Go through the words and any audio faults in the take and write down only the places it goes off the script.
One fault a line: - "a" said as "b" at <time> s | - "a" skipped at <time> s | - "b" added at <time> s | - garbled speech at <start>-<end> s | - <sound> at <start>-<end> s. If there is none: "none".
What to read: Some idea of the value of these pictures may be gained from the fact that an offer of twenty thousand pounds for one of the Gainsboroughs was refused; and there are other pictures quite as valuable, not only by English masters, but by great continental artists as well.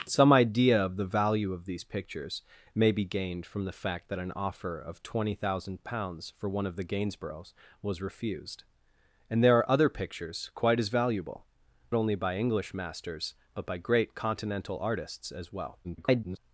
- "not" skipped at 11.4 s
- garbled speech at 15.8-16.4 s